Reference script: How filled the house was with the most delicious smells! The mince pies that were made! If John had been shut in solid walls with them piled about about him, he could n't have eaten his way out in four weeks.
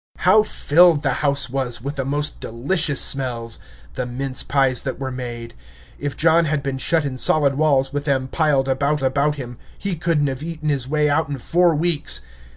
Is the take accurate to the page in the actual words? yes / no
yes